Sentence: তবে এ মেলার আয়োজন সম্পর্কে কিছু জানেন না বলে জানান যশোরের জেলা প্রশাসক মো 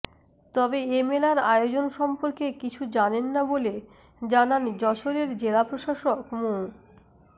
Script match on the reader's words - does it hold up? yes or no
yes